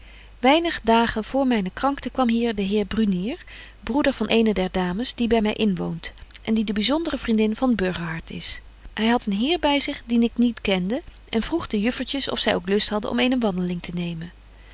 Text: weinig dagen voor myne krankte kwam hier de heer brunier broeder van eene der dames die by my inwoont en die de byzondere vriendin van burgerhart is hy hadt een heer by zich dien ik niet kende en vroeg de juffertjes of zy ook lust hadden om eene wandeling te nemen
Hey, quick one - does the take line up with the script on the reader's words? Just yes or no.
yes